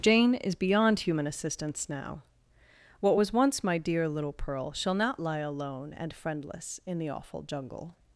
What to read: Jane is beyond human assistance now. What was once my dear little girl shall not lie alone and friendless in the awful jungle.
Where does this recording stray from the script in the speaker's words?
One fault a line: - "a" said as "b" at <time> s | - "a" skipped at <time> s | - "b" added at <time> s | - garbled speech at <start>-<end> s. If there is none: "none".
- "girl" said as "pearl" at 4.3 s